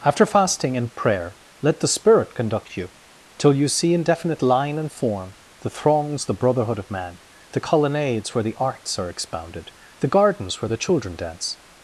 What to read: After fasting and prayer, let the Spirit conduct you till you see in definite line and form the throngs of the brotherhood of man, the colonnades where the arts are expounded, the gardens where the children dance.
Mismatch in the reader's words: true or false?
true